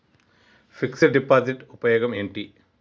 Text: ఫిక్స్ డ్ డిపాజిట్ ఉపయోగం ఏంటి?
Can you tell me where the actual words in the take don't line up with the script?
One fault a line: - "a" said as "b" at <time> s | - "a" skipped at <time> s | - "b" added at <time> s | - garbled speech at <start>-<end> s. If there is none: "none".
none